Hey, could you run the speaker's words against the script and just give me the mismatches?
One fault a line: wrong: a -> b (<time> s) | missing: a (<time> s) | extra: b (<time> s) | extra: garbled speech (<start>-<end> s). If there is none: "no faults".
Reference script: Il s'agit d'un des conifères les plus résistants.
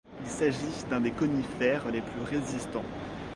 no faults